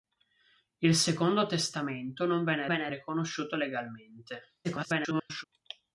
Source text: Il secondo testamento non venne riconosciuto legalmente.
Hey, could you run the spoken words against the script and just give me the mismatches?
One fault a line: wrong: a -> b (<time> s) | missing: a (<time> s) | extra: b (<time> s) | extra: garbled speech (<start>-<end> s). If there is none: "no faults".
extra: venne (2.7 s)
extra: garbled speech (4.6-5.4 s)